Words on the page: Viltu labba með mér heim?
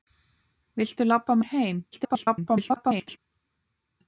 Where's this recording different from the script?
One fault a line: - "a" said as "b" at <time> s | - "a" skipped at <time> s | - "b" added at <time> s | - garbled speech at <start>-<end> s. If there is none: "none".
- "með" skipped at 1.4 s
- garbled speech at 1.9-3.2 s